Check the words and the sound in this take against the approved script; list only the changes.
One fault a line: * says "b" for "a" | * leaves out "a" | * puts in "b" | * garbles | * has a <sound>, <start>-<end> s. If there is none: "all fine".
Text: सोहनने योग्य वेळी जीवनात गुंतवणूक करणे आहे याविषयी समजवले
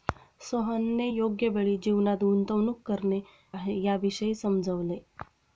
all fine